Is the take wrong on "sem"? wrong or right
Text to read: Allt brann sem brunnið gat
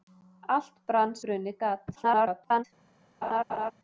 wrong